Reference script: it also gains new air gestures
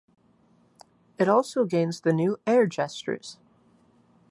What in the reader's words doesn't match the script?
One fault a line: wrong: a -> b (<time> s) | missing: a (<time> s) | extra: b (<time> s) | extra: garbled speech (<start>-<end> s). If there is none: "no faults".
extra: the (2.0 s)